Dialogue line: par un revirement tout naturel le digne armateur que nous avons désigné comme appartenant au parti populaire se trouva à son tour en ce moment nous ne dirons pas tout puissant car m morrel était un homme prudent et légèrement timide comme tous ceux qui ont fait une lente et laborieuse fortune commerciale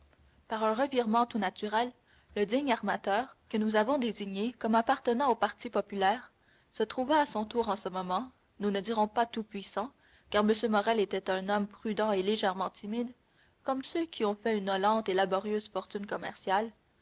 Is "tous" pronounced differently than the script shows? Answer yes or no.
yes